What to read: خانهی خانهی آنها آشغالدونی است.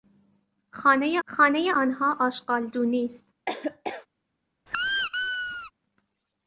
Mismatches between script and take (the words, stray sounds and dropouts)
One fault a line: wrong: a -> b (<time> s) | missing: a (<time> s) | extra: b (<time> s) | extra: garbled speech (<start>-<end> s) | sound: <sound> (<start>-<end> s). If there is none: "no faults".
sound: laugh (3.5-4.1 s)
sound: squeak (4.7-5.7 s)